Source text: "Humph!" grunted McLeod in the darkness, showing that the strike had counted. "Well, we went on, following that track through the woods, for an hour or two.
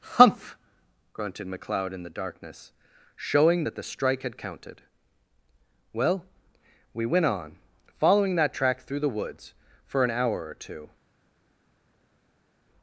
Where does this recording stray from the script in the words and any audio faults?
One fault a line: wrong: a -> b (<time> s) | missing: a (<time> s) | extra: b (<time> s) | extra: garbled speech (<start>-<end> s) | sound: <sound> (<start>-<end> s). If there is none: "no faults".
no faults